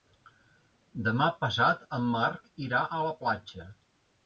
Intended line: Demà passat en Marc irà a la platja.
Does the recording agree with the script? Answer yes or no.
yes